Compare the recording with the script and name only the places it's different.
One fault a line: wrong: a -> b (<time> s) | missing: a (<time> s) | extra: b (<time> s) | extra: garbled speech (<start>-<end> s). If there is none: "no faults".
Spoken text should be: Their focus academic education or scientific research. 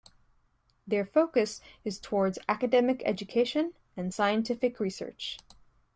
extra: is towards (1.8 s)
wrong: or -> and (4.0 s)